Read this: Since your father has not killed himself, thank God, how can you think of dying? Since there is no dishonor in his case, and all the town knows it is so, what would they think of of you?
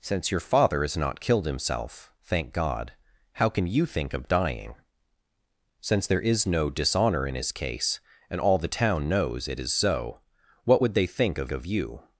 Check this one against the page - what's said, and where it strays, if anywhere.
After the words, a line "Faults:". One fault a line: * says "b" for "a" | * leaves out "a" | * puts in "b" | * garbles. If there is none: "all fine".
Since your father has not killed himself, thank God, how can you think of dying? Since there is no dishonor in his case, and all the town knows it is so, what would they think of of you?
Faults:
all fine